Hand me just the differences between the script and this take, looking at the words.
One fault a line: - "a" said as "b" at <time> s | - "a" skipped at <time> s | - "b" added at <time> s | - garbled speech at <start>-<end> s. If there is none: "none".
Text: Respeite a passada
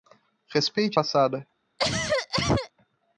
none